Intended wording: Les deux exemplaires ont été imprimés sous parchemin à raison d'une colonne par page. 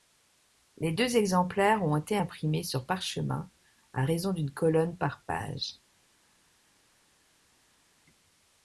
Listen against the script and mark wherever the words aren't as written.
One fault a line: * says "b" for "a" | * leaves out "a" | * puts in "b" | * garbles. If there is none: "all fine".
* says "sur" for "sous"